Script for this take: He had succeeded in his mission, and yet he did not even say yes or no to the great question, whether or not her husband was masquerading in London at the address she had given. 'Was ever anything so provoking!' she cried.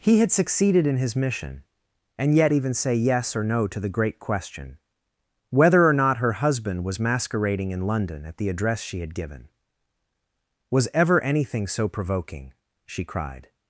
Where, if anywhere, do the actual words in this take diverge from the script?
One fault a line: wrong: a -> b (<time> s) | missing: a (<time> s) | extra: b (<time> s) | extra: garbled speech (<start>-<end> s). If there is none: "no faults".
missing: he did not (2.5 s)